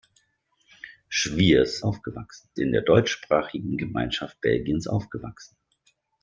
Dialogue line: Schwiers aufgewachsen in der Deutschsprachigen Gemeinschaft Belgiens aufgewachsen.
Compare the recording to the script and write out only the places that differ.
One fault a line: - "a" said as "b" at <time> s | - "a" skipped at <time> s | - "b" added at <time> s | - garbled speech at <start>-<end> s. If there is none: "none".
none